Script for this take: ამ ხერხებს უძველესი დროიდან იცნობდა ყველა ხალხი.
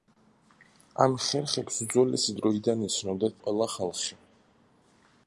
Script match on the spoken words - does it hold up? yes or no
yes